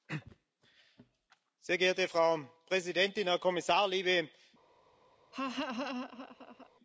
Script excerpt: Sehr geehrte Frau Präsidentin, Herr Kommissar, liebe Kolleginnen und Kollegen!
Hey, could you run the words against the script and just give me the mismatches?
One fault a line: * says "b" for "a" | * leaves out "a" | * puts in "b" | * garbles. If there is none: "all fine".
all fine